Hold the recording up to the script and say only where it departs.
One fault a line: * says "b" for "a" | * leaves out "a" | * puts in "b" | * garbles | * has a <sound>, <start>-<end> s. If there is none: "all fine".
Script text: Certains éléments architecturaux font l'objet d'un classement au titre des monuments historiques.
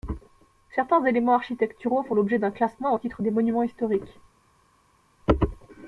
all fine